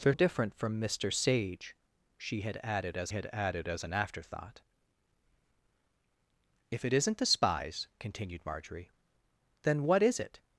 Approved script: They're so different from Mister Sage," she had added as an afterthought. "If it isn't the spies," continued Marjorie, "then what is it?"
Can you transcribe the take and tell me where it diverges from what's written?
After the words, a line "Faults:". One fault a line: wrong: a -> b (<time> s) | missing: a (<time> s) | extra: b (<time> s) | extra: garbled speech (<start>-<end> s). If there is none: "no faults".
They're different from Mister Sage," she had added as had added as an afterthought. "If it isn't the spies," continued Marjorie, "then what is it?"
Faults:
missing: so (0.1 s)
extra: had added as (3.1 s)